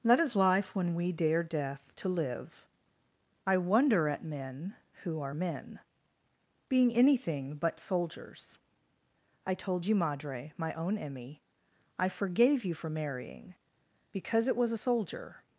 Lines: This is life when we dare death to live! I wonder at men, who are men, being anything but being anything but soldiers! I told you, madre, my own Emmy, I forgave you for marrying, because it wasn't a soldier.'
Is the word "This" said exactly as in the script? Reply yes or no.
no